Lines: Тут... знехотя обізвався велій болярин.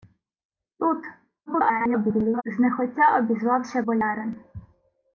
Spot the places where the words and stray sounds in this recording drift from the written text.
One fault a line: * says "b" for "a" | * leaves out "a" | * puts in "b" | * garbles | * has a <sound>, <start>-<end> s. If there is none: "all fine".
* garbles
* leaves out "велій"